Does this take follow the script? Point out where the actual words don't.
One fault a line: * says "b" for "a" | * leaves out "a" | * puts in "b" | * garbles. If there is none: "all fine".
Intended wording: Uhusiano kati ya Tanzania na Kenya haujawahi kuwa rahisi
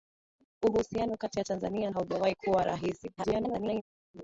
* leaves out "na Kenya"
* garbles